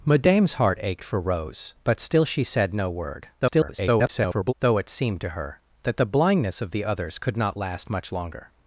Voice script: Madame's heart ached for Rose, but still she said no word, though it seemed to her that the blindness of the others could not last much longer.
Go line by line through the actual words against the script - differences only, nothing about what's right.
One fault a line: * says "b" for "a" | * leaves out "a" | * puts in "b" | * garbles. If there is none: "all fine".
* garbles